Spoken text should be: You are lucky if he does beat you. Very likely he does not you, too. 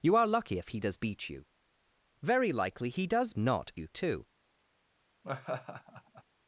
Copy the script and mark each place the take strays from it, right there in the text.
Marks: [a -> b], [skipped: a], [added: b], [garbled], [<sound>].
You are lucky if he does beat you. Very likely he does not you, too. [laugh]